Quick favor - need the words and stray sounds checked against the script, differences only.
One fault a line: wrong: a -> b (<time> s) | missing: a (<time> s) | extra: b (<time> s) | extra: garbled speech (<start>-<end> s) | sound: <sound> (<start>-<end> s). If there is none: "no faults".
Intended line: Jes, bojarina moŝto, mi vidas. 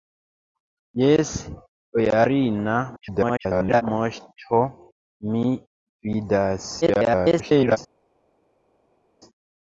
extra: garbled speech (3.0-3.8 s)
extra: garbled speech (6.8-7.8 s)